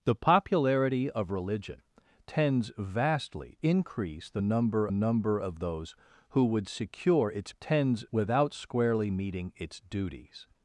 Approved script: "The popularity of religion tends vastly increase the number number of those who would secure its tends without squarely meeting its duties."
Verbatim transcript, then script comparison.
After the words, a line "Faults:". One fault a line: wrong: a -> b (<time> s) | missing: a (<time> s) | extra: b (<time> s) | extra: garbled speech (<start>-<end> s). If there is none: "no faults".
"The popularity of religion tends vastly increase the number number of those who would secure its tends without squarely meeting its duties."
Faults:
no faults